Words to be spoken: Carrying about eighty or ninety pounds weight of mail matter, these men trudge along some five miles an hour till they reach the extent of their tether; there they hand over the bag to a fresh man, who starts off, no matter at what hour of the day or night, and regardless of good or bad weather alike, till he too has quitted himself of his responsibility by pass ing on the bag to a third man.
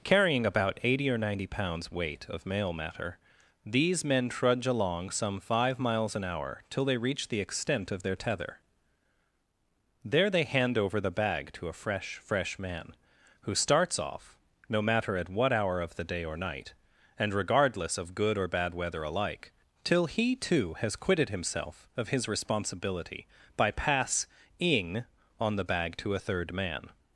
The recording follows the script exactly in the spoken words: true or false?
false